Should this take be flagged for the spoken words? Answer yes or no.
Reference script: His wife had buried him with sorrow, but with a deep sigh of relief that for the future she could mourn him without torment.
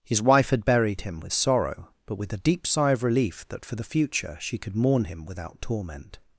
no